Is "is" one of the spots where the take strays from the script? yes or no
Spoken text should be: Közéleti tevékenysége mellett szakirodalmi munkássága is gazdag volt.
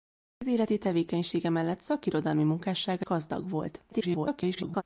yes